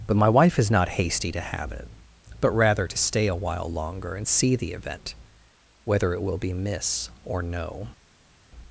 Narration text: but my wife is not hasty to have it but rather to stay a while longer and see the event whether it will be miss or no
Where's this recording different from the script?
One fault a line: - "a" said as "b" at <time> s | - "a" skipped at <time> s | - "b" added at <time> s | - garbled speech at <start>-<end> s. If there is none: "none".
none